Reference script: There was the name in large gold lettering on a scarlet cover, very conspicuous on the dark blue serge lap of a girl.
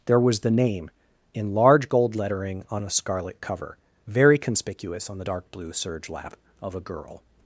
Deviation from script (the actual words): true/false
false